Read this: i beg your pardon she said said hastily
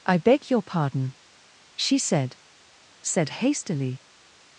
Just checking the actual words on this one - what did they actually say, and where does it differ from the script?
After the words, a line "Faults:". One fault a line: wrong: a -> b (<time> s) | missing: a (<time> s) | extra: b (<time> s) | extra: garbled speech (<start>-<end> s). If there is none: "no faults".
i beg your pardon she said said hastily
Faults:
no faults